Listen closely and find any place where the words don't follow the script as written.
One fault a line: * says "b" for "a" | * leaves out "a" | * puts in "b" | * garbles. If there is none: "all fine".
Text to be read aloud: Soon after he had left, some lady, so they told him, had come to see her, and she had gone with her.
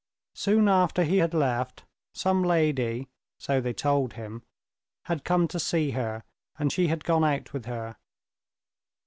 * puts in "out"